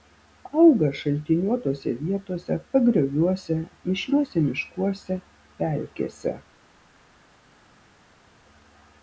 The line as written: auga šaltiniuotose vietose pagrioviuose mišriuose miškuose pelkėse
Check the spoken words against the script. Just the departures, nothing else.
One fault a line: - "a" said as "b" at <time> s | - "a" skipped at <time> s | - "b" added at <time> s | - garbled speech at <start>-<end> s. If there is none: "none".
none